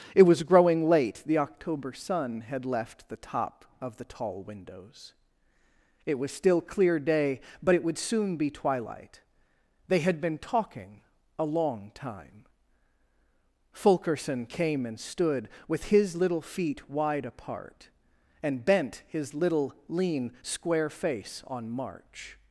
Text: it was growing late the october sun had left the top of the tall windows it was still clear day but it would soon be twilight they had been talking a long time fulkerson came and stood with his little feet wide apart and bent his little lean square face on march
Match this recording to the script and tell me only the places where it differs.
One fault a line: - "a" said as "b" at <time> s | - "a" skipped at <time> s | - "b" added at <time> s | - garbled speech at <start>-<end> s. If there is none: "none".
none